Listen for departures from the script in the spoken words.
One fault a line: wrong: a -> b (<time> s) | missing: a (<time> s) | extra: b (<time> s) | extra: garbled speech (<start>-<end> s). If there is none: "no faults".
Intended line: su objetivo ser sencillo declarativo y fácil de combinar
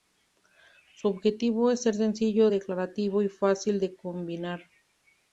extra: es (1.7 s)